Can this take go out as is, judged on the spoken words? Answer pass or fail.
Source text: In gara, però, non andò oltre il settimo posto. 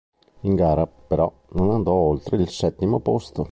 pass